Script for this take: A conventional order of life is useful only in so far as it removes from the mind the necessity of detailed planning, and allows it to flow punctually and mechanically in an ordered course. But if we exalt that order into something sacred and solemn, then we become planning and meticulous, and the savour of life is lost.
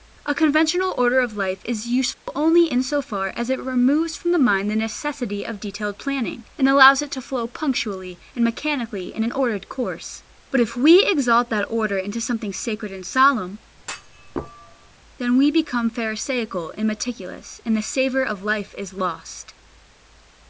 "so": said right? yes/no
yes